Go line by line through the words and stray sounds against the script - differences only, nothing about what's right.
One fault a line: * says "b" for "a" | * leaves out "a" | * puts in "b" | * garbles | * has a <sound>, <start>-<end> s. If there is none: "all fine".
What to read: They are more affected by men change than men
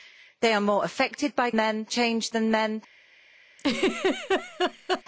* has a laugh, 3.6-5.0 s